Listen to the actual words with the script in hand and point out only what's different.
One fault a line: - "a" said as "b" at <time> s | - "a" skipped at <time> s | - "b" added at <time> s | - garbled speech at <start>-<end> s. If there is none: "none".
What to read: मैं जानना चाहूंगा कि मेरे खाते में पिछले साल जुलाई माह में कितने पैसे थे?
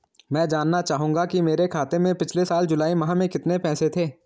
none